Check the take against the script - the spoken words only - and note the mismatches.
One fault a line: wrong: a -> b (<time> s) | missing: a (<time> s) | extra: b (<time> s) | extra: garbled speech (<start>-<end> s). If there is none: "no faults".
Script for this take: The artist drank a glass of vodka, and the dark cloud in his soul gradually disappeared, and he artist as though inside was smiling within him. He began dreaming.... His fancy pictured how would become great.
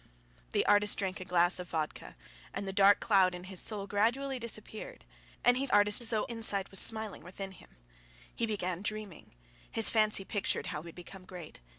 no faults